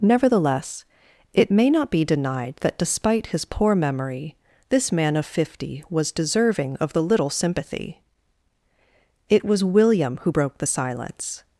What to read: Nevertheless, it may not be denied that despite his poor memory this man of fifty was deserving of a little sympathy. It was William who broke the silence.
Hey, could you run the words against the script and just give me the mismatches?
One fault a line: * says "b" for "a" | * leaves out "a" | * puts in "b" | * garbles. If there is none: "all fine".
* says "the" for "a"